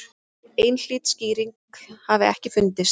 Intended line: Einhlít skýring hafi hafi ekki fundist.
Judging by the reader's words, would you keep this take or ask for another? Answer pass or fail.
fail